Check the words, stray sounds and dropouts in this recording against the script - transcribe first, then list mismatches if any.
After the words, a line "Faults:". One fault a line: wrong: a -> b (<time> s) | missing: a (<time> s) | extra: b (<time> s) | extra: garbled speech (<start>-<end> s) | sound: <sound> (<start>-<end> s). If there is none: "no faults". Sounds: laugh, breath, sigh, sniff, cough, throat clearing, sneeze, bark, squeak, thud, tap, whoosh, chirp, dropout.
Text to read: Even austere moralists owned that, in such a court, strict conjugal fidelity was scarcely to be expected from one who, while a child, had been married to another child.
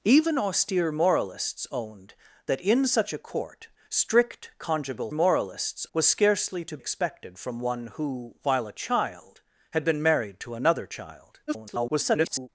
Even austere moralists owned that, in such a court, strict conjugal moralists was scarcely to expected from one who, while a child, had been married to another child. [garbled]
Faults:
wrong: fidelity -> moralists (5.1 s)
missing: be (6.8 s)
extra: garbled speech (11.5-12.5 s)